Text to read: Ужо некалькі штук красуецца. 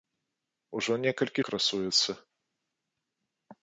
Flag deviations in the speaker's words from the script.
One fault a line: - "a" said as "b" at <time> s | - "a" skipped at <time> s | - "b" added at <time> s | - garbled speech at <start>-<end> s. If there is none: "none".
- "штук" skipped at 1.4 s